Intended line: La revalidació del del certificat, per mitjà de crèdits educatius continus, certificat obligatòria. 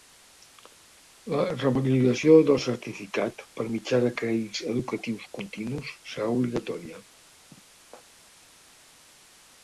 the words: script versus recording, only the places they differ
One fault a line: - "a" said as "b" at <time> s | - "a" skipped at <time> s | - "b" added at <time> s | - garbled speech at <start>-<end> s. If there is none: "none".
- "del" skipped at 2.6 s
- "certificat" said as "serà" at 6.1 s